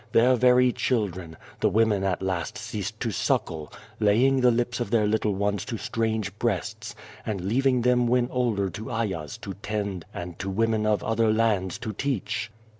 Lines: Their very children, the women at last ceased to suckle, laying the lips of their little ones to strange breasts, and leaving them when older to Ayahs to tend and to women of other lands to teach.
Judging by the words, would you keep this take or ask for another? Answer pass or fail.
pass